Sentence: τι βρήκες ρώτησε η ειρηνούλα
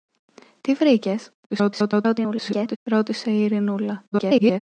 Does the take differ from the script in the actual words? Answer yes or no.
yes